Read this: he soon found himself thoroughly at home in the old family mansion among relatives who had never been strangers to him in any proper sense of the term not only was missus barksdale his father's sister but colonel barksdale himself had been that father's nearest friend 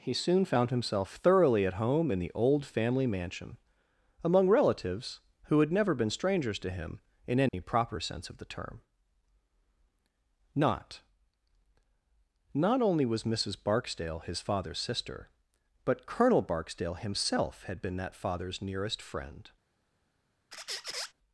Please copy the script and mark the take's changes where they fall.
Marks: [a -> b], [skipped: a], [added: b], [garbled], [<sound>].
he soon found himself thoroughly at home in the old family mansion among relatives who had never been strangers to him in any [dropout] proper sense of the term not [added: not] only was missus barksdale his father's sister but colonel barksdale himself had been that father's nearest friend [squeak]